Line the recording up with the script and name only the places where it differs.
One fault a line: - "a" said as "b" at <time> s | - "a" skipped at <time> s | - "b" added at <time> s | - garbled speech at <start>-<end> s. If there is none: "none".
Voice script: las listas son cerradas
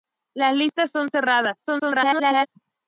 - garbled speech at 1.6-2.5 s